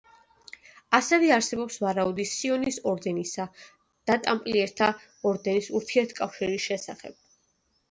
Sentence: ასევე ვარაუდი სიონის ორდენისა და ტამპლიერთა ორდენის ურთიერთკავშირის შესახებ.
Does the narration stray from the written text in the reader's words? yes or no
yes